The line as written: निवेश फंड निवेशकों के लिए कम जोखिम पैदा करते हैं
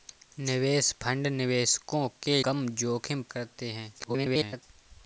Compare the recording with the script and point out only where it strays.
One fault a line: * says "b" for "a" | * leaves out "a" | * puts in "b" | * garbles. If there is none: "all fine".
* leaves out "लिए"
* leaves out "पैदा"
* garbles